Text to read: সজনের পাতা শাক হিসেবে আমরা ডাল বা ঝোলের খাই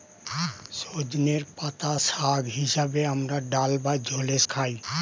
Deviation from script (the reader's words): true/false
false